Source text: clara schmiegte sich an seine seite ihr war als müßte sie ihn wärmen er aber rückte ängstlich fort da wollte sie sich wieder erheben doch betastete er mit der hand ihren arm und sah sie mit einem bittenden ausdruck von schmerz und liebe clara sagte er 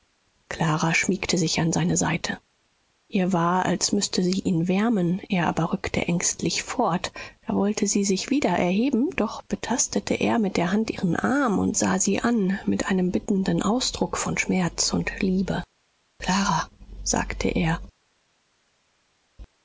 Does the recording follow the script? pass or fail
fail